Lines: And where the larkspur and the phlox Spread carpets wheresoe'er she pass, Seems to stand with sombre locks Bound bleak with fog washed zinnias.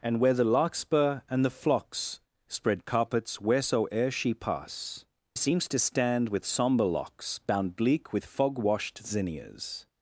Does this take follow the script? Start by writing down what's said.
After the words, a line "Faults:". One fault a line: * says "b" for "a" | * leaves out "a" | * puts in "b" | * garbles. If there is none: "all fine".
And where the larkspur and the phlox Spread carpets wheresoe'er she pass, Seems to stand with sombre locks Bound bleak with fog washed zinnias.
Faults:
all fine